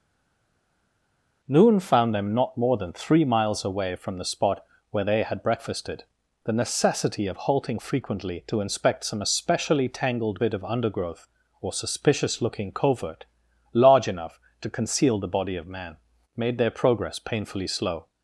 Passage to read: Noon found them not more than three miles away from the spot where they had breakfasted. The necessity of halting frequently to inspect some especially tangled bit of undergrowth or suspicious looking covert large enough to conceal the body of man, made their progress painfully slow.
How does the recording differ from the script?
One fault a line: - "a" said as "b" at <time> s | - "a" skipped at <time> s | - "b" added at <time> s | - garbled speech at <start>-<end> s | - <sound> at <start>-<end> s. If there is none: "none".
none